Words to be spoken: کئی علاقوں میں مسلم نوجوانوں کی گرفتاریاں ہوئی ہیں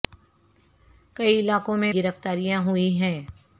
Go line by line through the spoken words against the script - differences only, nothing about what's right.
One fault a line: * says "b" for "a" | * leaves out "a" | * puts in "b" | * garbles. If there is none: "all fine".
* leaves out "مسلم نوجوانوں کی"